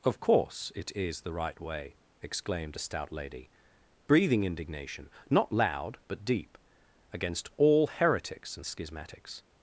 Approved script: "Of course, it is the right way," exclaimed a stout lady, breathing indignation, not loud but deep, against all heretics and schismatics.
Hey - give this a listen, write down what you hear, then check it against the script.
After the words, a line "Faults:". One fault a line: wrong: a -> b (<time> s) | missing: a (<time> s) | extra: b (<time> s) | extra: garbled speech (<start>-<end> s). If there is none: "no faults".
"Of course, it is the right way," exclaimed a stout lady, breathing indignation, not loud but deep, against all heretics and schismatics.
Faults:
no faults